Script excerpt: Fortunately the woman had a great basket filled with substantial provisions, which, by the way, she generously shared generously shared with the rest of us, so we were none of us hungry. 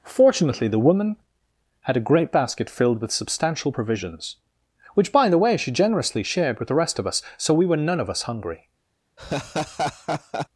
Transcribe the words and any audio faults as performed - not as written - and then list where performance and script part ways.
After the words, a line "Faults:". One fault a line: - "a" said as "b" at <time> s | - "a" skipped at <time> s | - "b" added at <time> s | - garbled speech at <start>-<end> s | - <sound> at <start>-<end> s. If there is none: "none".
Fortunately the woman had a great basket filled with substantial provisions, which, by the way, she generously shared with the rest of us, so we were none of us hungry.
Faults:
- "generously shared" skipped at 6.6 s
- laugh at 9.2-10.5 s